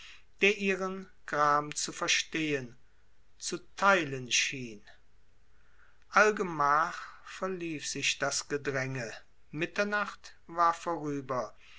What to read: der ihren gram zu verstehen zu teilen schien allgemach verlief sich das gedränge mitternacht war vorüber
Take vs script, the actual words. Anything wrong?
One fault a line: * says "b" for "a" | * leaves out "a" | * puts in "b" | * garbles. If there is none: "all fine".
all fine